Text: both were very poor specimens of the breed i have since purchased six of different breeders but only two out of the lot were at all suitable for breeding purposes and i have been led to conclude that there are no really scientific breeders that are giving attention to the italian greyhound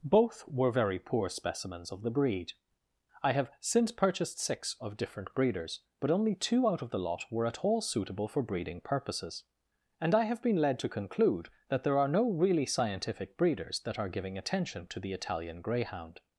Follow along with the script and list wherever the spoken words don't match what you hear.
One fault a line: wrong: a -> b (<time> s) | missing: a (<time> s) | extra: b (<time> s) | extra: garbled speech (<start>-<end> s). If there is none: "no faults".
no faults